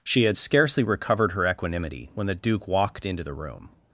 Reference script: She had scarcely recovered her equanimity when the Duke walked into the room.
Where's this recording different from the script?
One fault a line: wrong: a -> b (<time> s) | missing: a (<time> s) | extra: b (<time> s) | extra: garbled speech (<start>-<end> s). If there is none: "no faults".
no faults